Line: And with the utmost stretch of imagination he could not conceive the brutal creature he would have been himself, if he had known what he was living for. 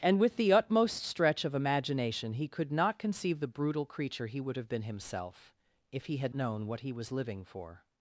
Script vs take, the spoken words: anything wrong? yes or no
no